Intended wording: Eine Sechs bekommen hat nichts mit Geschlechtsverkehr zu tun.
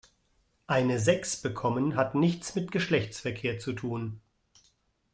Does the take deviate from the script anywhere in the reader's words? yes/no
no